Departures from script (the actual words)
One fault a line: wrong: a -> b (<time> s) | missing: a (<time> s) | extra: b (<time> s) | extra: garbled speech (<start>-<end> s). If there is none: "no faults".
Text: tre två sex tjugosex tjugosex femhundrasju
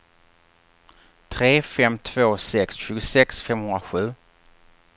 extra: fem (1.6 s)
missing: tjugosex (3.4 s)